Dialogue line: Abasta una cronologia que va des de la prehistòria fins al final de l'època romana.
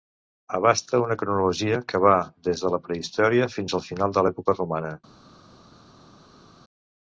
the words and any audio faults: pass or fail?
pass